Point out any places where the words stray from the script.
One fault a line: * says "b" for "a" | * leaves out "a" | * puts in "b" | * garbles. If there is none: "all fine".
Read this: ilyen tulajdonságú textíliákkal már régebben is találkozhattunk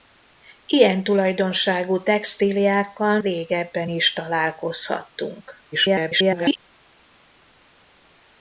* leaves out "már"
* garbles